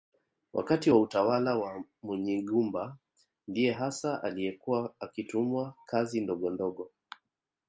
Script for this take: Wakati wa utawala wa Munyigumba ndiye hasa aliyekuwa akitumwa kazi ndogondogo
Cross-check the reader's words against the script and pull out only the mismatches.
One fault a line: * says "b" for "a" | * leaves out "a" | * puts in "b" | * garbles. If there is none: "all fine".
all fine